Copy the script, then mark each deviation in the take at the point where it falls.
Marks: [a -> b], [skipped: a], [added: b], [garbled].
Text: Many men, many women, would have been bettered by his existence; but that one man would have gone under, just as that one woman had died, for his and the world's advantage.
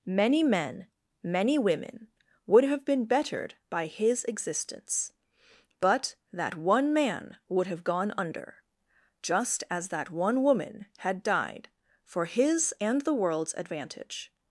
Many men, many women, would have been bettered by his existence; but that one man would have gone under, just as that one woman had died, for his and the world's advantage.